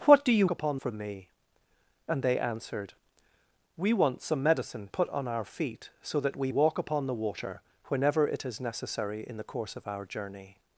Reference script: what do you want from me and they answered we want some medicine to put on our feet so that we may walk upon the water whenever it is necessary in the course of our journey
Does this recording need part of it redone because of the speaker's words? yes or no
yes